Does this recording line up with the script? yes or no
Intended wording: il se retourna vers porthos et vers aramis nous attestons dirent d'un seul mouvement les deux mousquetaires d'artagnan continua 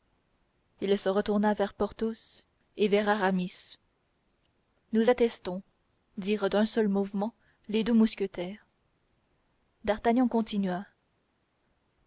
yes